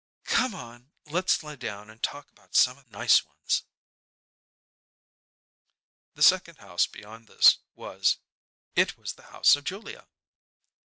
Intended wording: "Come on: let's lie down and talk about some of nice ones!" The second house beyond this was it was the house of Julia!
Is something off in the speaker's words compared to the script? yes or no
no